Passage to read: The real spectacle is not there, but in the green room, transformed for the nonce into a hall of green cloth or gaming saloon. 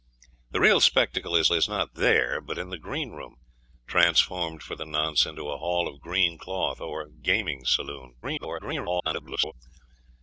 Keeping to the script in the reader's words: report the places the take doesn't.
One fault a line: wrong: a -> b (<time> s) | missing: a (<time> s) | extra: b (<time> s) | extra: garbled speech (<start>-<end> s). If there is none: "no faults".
extra: is (1.5 s)
extra: garbled speech (8.2-9.5 s)